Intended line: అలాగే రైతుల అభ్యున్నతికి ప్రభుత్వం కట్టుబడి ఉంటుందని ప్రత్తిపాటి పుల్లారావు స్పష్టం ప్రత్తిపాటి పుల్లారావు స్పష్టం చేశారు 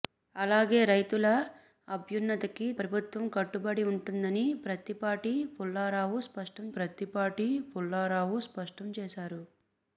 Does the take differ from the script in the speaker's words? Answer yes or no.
no